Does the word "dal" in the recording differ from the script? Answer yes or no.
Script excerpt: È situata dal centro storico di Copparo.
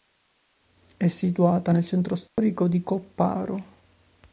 yes